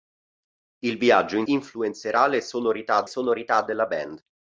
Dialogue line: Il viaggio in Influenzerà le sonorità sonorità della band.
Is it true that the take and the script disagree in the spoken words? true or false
false